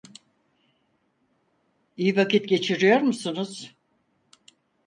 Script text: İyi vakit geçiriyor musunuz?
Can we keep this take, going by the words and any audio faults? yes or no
yes